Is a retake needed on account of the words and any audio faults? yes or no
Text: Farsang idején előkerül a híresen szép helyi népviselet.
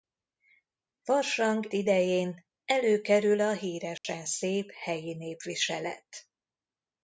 yes